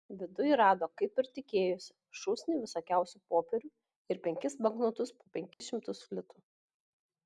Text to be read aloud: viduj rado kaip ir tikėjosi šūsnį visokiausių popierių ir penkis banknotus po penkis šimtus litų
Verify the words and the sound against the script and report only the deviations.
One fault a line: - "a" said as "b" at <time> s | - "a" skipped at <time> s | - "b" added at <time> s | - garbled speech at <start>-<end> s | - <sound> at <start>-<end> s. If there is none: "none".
- dropout at 5.5-5.6 s